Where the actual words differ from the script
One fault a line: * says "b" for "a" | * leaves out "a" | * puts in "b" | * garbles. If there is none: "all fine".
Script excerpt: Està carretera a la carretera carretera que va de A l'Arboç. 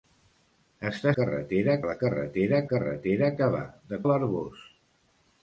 all fine